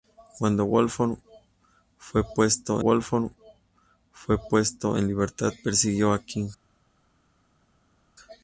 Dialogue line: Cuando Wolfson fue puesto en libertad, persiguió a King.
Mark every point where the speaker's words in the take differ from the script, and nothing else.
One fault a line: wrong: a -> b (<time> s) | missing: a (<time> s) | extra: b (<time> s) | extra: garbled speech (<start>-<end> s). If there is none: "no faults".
extra: Wolfson fue puesto (2.8 s)